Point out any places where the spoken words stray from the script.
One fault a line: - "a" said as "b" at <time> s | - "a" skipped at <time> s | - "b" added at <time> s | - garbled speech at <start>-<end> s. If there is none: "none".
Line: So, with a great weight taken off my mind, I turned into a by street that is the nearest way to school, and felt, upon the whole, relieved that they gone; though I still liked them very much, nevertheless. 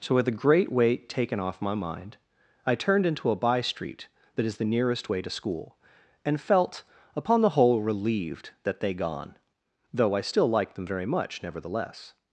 none